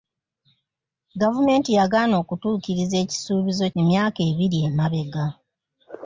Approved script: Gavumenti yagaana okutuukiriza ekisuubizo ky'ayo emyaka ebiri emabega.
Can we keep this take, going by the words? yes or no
no